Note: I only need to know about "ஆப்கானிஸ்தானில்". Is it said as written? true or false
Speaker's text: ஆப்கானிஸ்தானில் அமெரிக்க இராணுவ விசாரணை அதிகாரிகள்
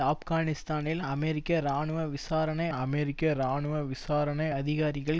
true